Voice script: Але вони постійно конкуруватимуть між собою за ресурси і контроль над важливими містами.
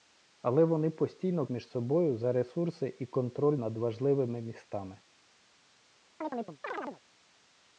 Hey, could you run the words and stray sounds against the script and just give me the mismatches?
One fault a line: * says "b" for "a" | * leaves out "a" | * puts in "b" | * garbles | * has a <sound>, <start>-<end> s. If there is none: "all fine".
* leaves out "конкуруватимуть"
* has a chirp, 6.2-7.0 s